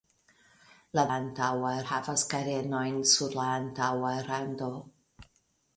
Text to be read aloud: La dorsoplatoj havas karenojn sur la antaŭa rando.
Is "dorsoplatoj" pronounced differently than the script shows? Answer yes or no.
yes